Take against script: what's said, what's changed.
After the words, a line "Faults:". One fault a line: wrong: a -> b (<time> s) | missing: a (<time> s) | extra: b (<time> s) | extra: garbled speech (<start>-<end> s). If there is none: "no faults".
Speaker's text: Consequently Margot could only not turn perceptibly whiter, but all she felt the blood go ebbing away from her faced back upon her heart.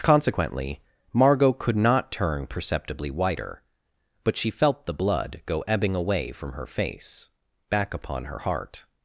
Consequently Margot could not turn perceptibly whiter, but she felt the blood go ebbing away from her face back upon her heart.
Faults:
missing: only (1.8 s)
missing: all (4.4 s)
wrong: faced -> face (6.7 s)